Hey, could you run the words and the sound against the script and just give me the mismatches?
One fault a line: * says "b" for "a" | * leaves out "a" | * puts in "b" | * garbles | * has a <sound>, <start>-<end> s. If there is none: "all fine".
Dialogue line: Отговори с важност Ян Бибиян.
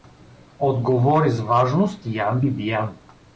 all fine